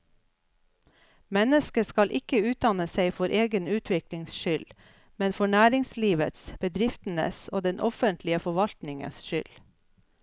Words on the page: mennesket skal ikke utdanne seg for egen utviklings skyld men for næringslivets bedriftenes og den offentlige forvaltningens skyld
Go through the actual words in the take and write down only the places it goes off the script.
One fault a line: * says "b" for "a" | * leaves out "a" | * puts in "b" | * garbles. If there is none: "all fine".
all fine